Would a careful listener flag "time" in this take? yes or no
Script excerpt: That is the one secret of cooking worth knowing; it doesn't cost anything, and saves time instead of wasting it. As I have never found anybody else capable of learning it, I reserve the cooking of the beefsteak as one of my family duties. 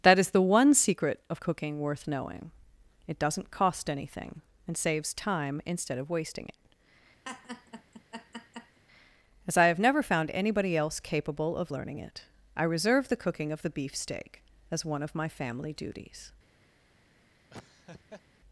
no